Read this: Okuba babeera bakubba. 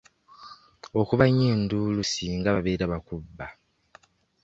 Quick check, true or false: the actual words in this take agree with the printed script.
false